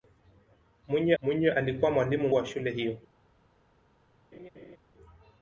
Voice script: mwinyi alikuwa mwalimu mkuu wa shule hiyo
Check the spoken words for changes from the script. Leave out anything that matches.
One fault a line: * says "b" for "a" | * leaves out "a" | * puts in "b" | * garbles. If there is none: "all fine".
* puts in "mwinyi"
* leaves out "mkuu"